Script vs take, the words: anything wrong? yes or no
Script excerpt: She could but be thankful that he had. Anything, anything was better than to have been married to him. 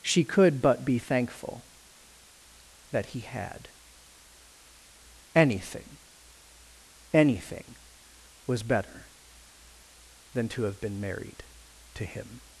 no